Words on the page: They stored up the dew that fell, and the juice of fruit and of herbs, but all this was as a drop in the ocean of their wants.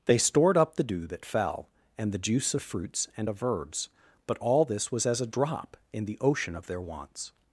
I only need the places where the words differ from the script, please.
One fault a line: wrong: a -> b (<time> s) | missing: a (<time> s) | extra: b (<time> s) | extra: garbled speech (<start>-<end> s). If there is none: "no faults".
wrong: fruit -> fruits (2.6 s)